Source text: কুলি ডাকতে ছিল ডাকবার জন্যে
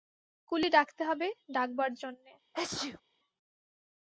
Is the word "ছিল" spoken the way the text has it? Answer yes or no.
no